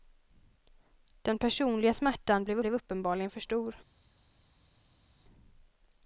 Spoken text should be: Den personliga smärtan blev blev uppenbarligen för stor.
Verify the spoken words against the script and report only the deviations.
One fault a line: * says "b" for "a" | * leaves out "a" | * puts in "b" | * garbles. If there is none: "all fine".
all fine